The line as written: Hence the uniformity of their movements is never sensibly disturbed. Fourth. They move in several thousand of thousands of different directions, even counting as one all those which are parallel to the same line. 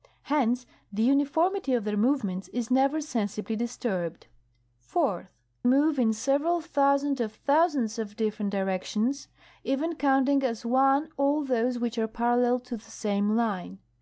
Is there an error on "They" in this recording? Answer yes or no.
yes